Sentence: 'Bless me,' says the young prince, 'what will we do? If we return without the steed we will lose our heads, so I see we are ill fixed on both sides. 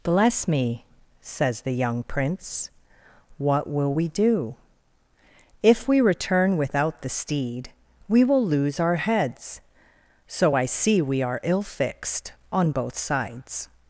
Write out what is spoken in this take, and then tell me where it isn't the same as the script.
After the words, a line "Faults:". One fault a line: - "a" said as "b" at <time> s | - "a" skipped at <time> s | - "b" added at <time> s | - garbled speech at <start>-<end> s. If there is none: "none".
'Bless me,' says the young prince, 'what will we do? If we return without the steed we will lose our heads, so I see we are ill fixed on both sides.
Faults:
none